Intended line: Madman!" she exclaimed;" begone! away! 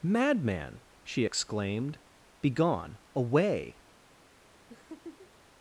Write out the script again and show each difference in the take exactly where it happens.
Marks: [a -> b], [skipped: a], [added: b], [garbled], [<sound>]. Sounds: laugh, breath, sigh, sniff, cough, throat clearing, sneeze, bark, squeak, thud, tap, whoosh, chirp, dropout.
Madman!" she exclaimed;" begone! away! [laugh]